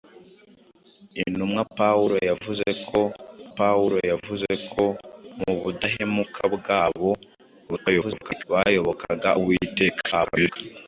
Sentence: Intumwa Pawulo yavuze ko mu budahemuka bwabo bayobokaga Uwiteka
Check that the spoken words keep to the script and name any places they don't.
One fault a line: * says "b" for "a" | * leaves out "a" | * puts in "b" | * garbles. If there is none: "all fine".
* puts in "Pawulo yavuze ko"
* garbles
* garbles